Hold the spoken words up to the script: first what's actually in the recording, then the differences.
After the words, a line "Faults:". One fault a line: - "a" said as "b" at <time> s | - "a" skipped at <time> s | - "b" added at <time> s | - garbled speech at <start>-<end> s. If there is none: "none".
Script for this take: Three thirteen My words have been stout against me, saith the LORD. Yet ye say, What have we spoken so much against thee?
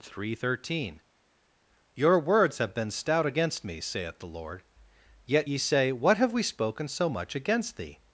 Three thirteen Your words have been stout against me, saith the LORD. Yet ye say, What have we spoken so much against thee?
Faults:
- "My" said as "Your" at 1.9 s